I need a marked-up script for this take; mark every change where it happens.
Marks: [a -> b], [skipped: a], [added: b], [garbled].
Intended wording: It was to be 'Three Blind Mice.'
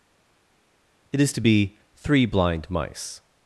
It [was -> is] to be 'Three Blind Mice.'